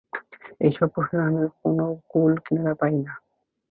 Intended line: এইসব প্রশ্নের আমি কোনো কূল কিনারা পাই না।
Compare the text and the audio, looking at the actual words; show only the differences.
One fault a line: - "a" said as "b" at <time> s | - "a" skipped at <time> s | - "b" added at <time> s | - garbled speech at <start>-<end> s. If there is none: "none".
none